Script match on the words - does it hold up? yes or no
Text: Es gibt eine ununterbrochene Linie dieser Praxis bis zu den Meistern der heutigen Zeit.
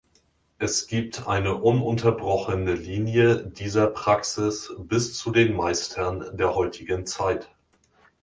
yes